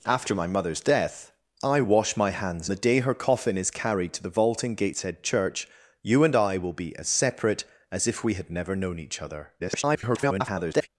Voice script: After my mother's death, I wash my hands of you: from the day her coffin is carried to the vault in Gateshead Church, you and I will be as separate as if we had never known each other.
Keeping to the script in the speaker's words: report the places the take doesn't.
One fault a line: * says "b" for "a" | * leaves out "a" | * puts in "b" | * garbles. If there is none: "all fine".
* leaves out "of you from"
* garbles